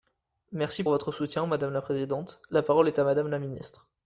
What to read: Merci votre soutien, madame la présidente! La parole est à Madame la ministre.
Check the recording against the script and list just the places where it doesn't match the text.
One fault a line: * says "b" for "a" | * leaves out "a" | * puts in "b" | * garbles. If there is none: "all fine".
all fine